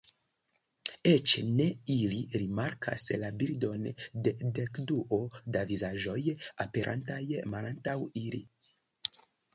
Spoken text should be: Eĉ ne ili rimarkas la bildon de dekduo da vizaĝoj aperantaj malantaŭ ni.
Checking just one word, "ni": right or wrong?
wrong